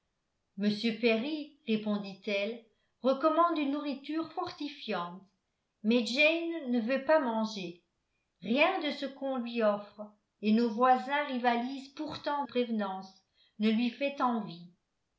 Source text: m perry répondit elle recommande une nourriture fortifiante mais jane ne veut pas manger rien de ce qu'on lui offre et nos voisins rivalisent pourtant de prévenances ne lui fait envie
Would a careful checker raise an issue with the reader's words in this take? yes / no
yes